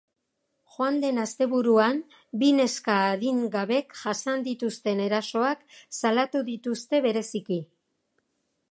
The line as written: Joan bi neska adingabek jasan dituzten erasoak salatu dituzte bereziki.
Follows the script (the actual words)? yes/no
no